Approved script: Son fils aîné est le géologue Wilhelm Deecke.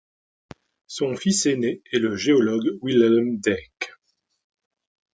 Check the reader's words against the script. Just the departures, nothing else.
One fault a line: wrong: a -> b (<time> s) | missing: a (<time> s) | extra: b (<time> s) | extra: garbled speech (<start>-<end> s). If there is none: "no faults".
no faults